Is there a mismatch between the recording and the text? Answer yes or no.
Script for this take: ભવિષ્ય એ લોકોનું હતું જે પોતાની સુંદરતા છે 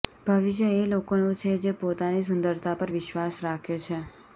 yes